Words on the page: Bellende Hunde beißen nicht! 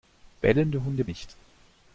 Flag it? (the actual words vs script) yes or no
yes